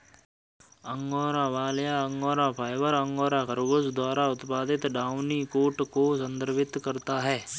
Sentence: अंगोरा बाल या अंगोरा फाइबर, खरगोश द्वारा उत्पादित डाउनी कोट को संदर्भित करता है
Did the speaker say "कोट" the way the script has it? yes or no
yes